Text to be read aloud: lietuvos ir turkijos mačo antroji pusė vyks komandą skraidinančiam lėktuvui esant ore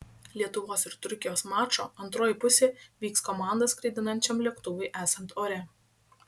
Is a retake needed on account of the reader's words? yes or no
no